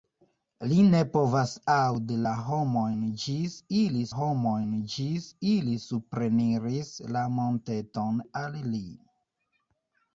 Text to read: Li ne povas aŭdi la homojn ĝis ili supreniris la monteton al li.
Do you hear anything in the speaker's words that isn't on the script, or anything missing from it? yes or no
yes